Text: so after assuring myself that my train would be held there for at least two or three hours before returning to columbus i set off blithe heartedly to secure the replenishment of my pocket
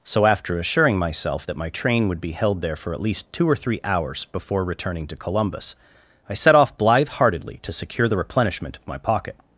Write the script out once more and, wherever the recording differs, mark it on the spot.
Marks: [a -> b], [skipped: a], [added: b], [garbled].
so after assuring myself that my train would be held there for at least two or three hours before returning to columbus i set off blithe heartedly to secure the replenishment of my pocket